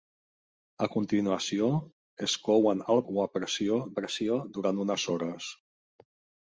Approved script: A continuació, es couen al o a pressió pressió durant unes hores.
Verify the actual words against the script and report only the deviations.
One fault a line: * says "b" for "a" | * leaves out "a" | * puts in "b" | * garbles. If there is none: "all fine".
all fine